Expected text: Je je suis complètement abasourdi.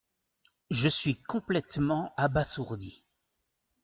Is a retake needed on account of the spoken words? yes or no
yes